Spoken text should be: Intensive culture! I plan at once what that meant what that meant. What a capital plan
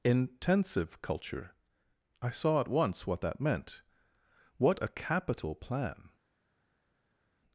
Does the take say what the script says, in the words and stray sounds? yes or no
no